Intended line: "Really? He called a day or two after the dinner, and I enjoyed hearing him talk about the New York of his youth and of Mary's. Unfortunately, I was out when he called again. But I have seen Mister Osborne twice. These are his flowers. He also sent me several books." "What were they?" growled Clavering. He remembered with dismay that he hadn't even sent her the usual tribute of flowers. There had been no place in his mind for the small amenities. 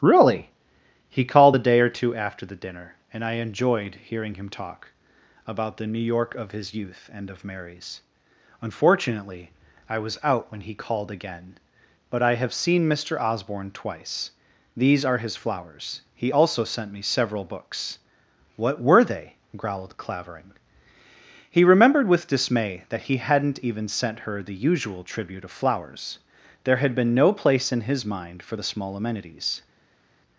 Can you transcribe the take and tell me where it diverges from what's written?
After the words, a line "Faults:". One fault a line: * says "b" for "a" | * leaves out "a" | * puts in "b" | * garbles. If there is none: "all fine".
"Really? He called a day or two after the dinner, and I enjoyed hearing him talk about the New York of his youth and of Mary's. Unfortunately, I was out when he called again. But I have seen Mister Osborne twice. These are his flowers. He also sent me several books." "What were they?" growled Clavering. He remembered with dismay that he hadn't even sent her the usual tribute of flowers. There had been no place in his mind for the small amenities.
Faults:
all fine